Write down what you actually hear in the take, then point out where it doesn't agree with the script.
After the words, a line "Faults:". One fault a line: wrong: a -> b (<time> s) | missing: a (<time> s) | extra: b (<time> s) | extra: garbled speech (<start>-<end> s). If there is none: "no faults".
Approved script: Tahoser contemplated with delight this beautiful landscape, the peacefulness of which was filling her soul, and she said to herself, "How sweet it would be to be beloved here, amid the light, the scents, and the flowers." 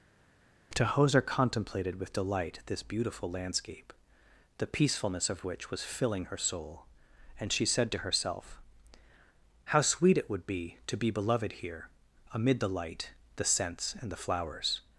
Tahoser contemplated with delight this beautiful landscape, the peacefulness of which was filling her soul, and she said to herself, "How sweet it would be to be beloved here, amid the light, the scents, and the flowers."
Faults:
no faults